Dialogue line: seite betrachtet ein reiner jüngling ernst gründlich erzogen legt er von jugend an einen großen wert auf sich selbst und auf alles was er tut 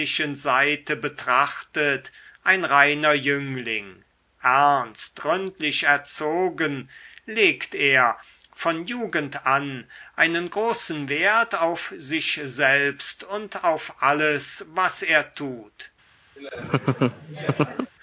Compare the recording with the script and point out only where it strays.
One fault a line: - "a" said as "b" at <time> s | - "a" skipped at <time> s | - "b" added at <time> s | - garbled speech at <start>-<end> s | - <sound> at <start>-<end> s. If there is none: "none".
- laugh at 16.4-17.9 s